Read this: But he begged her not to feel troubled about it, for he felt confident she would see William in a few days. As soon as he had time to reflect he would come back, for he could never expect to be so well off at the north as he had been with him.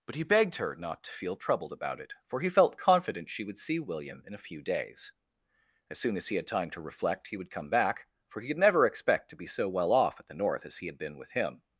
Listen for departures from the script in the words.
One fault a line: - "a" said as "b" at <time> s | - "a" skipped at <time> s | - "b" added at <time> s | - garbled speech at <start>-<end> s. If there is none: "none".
none